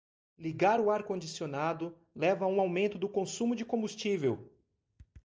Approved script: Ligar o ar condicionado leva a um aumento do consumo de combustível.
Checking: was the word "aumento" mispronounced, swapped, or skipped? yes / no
no